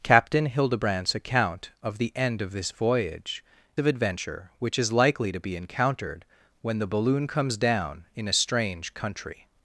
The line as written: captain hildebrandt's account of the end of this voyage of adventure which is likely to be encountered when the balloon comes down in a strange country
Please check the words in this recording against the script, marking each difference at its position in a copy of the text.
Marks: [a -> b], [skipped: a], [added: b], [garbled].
captain hildebrandt's account of the end of this voyage of adventure which is likely to be encountered when the balloon comes down in a strange country